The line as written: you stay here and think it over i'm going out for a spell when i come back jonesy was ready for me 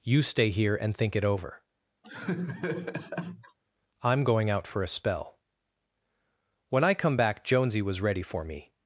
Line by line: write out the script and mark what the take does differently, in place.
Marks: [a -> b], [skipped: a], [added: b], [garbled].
you stay here and think it over i'm going out for a spell when i come back jonesy was ready for me